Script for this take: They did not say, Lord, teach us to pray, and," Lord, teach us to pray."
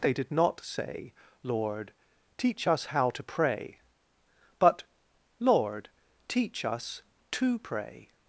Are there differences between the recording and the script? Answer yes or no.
yes